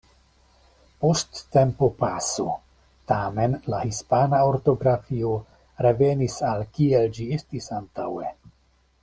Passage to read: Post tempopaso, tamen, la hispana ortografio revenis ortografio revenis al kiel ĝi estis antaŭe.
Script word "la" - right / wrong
right